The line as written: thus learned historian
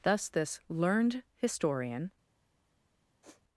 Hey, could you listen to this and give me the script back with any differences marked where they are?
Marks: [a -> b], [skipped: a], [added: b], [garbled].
thus [added: this] learned historian